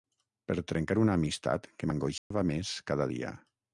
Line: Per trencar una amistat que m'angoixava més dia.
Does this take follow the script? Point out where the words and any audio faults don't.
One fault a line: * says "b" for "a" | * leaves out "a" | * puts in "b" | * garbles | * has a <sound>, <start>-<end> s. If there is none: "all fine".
* has a dropout, 2.2-2.3 s
* puts in "cada"